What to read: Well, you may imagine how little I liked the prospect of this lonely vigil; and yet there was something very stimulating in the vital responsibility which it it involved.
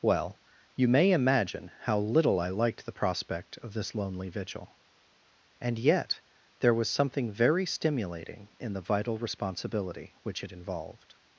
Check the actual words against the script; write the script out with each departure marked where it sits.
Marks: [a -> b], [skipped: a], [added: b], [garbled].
Well, you may imagine how little I liked the prospect of this lonely vigil; and yet there was something very stimulating in the vital responsibility which it [skipped: it] involved.